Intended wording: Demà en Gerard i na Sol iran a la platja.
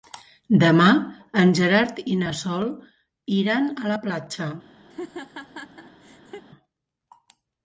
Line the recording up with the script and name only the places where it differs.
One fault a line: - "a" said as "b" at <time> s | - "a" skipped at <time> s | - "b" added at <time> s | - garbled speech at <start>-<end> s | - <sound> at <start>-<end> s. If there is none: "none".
- laugh at 4.9-6.5 s